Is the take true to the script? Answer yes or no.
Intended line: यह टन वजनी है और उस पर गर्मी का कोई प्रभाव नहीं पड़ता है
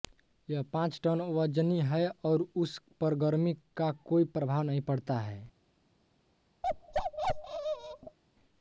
no